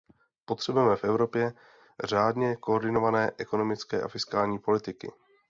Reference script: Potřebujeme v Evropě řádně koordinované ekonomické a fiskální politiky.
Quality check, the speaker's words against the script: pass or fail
pass